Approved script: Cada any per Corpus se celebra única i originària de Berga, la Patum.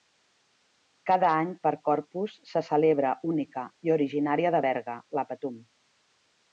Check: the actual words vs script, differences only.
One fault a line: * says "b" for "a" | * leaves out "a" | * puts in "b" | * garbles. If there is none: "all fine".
all fine